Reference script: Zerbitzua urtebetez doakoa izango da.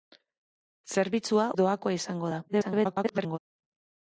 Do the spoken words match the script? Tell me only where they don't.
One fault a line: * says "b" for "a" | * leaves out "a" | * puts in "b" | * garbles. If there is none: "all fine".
* leaves out "urtebetez"
* garbles